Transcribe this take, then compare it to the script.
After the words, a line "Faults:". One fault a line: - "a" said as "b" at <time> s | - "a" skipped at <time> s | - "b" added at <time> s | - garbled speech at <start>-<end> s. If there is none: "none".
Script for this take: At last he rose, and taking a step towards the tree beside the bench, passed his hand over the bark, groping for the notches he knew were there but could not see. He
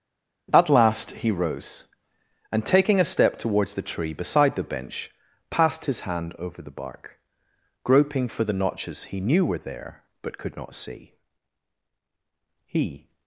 At last he rose, and taking a step towards the tree beside the bench, passed his hand over the bark, groping for the notches he knew were there but could not see. He
Faults:
none